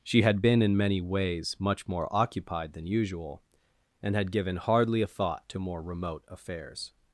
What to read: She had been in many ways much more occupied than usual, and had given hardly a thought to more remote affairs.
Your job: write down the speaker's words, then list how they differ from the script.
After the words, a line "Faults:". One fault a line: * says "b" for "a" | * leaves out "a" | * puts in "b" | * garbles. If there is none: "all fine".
She had been in many ways much more occupied than usual, and had given hardly a thought to more remote affairs.
Faults:
all fine